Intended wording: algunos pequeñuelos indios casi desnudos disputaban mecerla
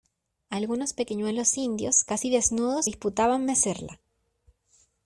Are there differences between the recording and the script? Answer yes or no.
no